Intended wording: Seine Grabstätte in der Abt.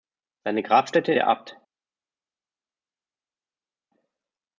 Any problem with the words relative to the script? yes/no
yes